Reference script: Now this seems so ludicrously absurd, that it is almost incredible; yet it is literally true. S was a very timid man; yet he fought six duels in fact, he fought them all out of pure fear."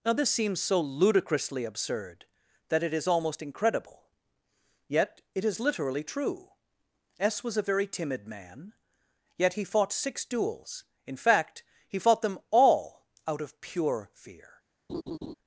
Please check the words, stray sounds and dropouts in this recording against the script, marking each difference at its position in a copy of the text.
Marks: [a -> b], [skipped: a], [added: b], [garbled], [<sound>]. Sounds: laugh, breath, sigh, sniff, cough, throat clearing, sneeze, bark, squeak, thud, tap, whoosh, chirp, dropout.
Now this seems so ludicrously absurd, that it is almost incredible; yet it is literally true. S was a very timid man; yet he fought six duels in fact, he fought them all out of pure fear." [laugh]